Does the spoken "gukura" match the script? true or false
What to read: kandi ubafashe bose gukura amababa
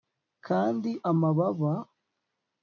false